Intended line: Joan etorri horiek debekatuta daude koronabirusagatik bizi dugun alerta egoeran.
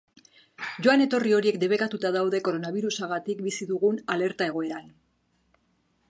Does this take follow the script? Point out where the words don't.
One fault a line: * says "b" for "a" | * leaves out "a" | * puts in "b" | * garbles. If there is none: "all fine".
all fine